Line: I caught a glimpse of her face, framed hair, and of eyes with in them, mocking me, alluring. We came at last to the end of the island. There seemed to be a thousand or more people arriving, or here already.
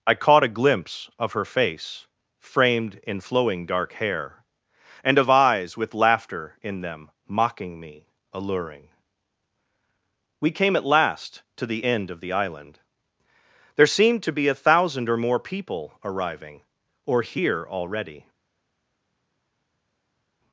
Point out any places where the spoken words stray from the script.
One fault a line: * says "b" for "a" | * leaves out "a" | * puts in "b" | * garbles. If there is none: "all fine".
* puts in "in flowing dark"
* puts in "laughter"